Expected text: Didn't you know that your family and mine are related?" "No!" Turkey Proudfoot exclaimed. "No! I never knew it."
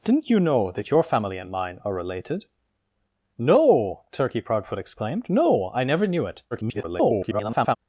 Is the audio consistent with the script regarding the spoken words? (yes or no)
no